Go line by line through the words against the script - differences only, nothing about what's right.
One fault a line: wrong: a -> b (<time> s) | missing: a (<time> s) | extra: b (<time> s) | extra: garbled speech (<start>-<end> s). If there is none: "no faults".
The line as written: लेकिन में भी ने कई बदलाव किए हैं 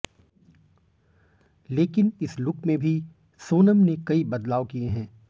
extra: इस लुक (2.2 s)
extra: सोनम (3.4 s)